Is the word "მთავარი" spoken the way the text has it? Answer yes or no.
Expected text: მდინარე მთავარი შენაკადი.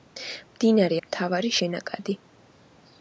yes